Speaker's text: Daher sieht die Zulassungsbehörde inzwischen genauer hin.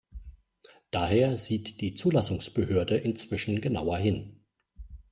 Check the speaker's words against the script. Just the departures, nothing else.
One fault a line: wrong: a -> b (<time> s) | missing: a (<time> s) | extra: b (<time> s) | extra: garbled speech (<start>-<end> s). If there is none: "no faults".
no faults